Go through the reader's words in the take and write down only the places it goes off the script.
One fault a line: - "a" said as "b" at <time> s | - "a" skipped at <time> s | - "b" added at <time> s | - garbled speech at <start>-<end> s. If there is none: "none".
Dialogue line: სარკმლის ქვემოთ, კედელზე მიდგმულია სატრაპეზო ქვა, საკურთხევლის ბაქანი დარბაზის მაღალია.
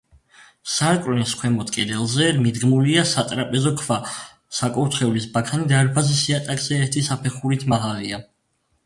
- "იატაკზე ერთი საფეხურით" added at 6.3 s